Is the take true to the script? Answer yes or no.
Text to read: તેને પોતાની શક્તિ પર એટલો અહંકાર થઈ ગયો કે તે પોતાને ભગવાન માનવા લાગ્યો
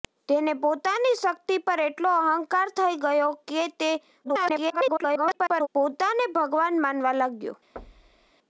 no